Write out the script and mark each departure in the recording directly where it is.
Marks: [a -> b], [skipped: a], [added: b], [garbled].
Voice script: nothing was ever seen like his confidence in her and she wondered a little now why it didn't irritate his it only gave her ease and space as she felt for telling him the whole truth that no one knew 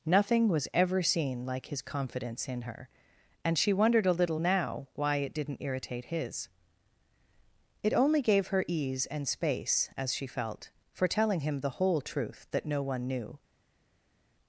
nothing was ever seen like his confidence in her and she wondered a little now why it didn't irritate his it only gave her ease and space as she felt for telling him the whole truth that no one knew